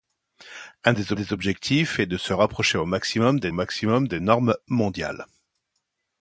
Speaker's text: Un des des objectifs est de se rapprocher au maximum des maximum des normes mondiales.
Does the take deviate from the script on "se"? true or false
false